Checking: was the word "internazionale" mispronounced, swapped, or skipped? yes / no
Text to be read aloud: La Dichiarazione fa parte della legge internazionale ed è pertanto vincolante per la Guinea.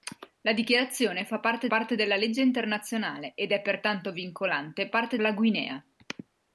no